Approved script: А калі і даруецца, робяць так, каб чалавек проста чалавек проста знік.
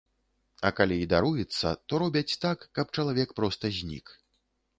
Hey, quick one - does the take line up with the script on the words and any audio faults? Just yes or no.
no